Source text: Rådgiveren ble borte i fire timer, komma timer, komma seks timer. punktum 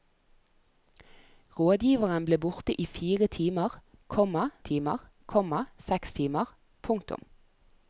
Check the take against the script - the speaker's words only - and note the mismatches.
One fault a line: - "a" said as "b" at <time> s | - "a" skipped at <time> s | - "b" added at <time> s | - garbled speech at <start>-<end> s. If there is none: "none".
none